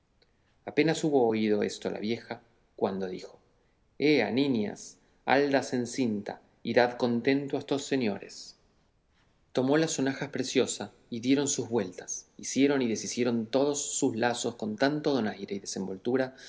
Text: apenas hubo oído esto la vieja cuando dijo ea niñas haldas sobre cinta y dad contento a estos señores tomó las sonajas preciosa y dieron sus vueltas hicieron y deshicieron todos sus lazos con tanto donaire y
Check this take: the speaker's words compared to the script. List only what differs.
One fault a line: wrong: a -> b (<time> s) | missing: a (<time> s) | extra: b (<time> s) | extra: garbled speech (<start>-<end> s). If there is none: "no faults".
wrong: sobre -> en (5.7 s)